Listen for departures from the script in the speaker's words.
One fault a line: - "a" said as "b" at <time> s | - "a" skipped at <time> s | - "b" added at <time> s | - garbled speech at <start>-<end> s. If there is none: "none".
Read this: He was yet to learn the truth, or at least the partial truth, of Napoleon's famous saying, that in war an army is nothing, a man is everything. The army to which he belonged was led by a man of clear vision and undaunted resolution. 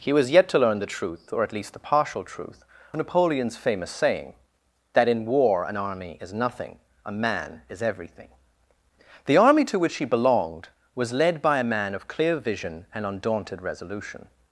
- "of" skipped at 2.6 s